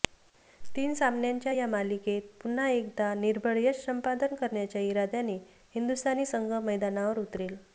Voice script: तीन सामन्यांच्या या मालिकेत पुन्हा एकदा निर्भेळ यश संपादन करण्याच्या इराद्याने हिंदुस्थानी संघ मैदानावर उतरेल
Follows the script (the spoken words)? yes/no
yes